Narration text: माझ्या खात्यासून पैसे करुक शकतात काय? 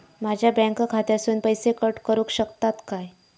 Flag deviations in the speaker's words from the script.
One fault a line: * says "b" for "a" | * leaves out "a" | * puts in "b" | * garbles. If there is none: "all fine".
* puts in "बँक"
* puts in "कट"